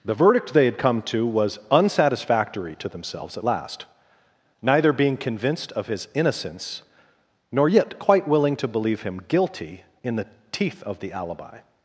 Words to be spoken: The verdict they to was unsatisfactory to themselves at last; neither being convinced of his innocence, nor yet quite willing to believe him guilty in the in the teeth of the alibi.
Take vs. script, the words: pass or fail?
fail